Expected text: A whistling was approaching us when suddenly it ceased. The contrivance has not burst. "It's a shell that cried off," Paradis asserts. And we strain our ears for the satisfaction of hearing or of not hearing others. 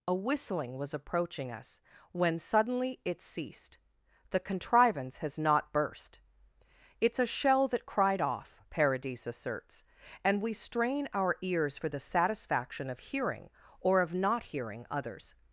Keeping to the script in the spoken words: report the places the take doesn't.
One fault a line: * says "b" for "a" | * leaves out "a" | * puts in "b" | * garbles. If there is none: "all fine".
all fine